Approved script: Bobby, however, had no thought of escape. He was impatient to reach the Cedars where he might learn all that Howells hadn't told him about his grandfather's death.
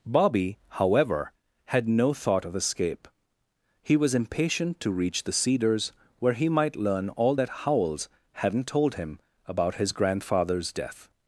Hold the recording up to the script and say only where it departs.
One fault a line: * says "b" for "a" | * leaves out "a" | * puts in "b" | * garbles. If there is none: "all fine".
all fine